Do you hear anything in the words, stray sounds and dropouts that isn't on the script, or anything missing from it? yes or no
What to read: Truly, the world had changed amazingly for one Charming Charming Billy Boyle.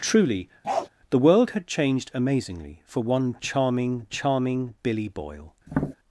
yes